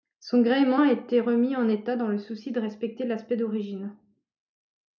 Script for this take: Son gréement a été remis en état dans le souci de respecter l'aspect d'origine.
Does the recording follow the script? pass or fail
pass